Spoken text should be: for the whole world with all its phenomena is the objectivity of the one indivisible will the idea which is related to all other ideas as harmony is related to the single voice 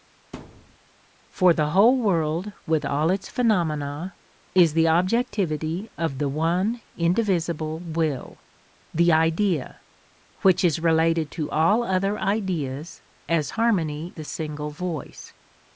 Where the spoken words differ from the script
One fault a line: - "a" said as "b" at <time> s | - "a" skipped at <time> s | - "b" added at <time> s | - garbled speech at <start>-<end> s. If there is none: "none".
- "is related to" skipped at 14.2 s